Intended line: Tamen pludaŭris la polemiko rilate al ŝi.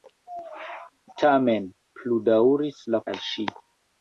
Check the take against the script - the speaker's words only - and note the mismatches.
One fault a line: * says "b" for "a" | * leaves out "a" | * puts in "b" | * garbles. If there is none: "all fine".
* leaves out "polemiko rilate"